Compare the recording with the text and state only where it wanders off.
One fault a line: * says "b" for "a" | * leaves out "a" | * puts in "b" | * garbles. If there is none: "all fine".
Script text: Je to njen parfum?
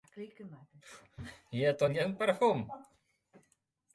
all fine